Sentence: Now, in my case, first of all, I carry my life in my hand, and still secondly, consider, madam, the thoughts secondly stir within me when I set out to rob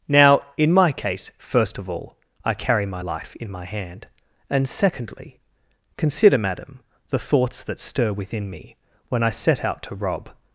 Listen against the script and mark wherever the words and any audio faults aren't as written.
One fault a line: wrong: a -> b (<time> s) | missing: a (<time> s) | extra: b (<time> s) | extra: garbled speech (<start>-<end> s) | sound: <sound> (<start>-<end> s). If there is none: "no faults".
missing: still (4.7 s)
wrong: secondly -> that (7.6 s)